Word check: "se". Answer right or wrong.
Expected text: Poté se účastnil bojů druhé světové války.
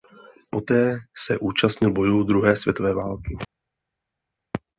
right